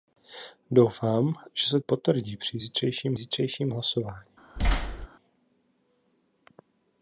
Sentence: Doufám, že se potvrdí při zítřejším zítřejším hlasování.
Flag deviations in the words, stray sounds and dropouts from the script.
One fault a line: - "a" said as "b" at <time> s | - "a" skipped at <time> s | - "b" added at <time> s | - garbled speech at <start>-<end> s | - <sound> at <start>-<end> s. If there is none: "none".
- thud at 4.6-5.1 s